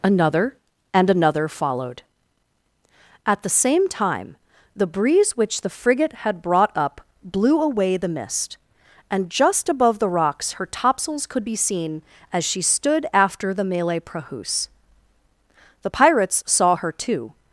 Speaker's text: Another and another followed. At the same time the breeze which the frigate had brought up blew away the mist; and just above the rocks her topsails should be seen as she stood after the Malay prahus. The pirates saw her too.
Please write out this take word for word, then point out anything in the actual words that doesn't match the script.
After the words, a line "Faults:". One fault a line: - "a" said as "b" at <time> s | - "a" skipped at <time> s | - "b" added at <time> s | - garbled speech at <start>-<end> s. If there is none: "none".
Another and another followed. At the same time the breeze which the frigate had brought up blew away the mist; and just above the rocks her topsails could be seen as she stood after the Malay prahus. The pirates saw her too.
Faults:
- "should" said as "could" at 11.3 s